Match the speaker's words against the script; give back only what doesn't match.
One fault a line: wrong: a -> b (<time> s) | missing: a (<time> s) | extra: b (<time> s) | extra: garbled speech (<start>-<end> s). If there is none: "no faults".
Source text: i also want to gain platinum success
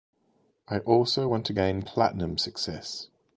no faults